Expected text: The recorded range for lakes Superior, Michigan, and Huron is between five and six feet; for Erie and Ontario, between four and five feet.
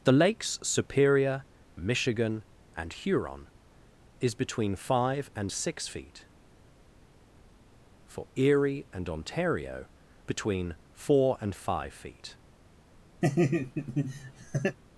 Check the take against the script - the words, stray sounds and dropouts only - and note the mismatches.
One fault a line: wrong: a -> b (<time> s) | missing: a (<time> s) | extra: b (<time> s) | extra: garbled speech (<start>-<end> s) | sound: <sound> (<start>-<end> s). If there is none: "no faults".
missing: recorded range for (0.1 s)
sound: laugh (13.2-14.8 s)